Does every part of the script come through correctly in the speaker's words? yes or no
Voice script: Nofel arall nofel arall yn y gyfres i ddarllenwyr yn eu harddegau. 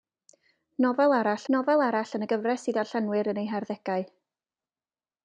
yes